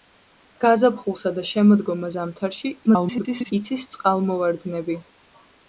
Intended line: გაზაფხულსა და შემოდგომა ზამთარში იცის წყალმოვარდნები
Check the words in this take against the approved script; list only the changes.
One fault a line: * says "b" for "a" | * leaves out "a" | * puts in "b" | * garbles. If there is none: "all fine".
* garbles